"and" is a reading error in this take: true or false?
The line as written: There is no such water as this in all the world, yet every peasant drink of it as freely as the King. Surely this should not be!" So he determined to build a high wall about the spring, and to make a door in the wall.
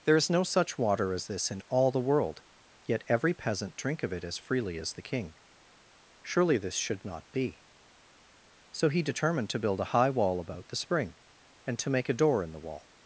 false